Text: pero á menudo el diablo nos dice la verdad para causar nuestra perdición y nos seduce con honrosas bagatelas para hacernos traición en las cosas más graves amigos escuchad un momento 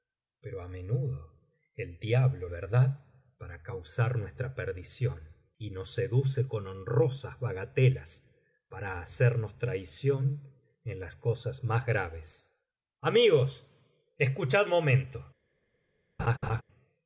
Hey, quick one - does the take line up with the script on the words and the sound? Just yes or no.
no